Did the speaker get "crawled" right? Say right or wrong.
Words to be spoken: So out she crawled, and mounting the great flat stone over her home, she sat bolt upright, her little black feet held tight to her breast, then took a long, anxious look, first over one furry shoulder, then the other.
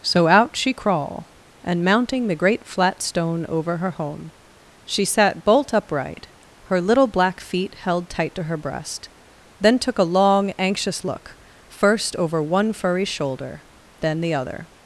wrong